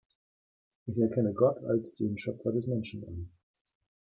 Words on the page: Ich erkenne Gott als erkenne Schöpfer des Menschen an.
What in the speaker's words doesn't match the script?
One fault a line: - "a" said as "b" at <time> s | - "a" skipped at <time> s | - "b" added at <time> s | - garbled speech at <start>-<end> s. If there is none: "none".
- "erkenne" said as "den" at 1.9 s